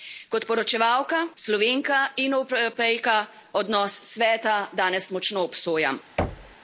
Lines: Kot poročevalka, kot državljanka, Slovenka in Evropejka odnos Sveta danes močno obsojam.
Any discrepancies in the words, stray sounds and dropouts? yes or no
yes